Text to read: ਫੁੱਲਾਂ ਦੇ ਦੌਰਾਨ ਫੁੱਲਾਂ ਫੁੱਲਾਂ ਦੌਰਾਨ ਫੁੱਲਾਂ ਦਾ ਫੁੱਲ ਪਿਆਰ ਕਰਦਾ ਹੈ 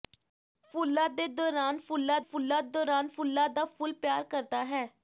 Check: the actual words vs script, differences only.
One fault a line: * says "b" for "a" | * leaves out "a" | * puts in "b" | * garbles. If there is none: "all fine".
all fine